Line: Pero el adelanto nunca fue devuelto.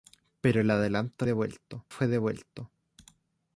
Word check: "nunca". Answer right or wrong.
wrong